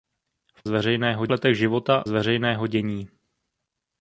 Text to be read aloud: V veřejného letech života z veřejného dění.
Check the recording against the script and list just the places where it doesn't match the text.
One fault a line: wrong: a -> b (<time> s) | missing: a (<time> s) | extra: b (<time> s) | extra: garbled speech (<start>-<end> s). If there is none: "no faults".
no faults